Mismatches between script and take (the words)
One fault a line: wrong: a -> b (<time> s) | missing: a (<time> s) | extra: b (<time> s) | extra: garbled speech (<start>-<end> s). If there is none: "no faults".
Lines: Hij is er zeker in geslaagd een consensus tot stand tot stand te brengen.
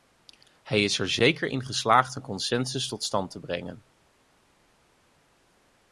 missing: tot stand (3.3 s)